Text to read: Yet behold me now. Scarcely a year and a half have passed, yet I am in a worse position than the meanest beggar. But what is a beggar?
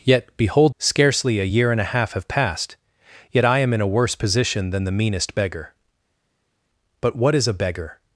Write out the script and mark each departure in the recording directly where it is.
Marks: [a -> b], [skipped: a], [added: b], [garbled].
Yet behold [skipped: me now.] Scarcely a year and a half have passed, yet I am in a worse position than the meanest beggar. But what is a beggar?